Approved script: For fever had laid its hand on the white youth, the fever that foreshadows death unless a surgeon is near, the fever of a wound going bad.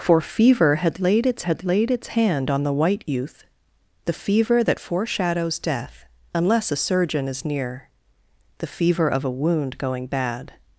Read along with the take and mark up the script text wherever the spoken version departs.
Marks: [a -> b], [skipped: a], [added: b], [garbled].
For fever had laid its [added: had laid its] hand on the white youth, the fever that foreshadows death unless a surgeon is near, the fever of a wound going bad.